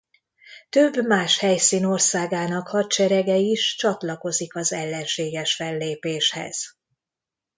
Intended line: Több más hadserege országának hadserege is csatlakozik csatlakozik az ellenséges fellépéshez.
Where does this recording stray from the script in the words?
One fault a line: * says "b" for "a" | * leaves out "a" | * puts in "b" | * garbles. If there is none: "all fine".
* says "helyszín" for "hadserege"
* leaves out "csatlakozik"